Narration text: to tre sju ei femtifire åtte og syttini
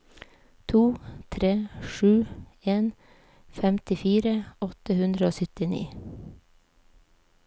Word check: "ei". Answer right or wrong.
wrong